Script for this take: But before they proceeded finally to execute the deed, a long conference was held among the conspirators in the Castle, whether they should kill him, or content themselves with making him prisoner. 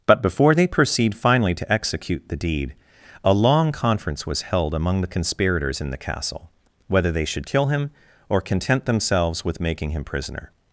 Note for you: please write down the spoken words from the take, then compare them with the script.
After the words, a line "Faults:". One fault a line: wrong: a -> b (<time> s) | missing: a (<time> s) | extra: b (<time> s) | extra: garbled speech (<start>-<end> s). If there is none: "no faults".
But before they proceed finally to execute the deed, a long conference was held among the conspirators in the Castle, whether they should kill him, or content themselves with making him prisoner.
Faults:
wrong: proceeded -> proceed (0.7 s)